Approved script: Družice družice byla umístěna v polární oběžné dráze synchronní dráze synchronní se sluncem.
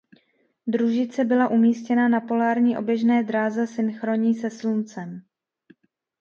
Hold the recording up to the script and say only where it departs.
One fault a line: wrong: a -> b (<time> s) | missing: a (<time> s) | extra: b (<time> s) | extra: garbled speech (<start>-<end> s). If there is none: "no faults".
missing: družice (1.2 s)
wrong: v -> na (2.1 s)
missing: dráze synchronní (4.3 s)